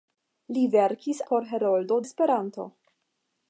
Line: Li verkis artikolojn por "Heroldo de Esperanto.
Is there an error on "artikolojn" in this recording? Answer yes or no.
yes